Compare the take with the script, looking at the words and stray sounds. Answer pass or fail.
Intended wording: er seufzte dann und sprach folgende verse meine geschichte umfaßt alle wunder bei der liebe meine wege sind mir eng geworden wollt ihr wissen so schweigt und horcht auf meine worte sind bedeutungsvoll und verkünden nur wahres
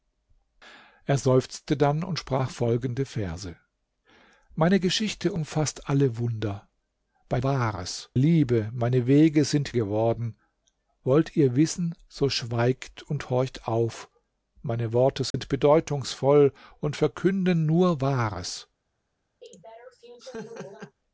fail